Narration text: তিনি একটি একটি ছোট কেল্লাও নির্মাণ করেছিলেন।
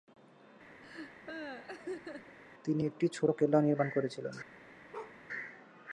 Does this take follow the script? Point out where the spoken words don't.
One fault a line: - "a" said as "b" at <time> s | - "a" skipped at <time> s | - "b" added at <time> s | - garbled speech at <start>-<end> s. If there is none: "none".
- "একটি" skipped at 3.1 s